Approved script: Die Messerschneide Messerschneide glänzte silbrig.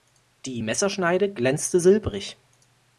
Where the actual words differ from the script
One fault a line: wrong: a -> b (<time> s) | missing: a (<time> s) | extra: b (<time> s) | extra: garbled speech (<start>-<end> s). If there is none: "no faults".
missing: Messerschneide (1.3 s)